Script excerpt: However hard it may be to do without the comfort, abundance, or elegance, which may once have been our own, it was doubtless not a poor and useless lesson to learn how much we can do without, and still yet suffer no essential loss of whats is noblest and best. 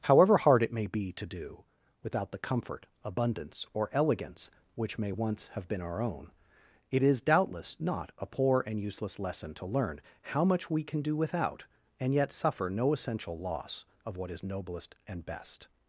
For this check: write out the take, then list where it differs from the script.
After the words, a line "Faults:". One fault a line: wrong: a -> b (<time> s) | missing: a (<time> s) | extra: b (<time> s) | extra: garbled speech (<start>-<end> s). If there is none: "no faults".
However hard it may be to do without the comfort, abundance, or elegance, which may once have been our own, it is doubtless not a poor and useless lesson to learn how much we can do without, and yet suffer no essential loss of what is noblest and best.
Faults:
wrong: was -> is (7.0 s)
missing: still (12.1 s)
wrong: whats -> what (14.2 s)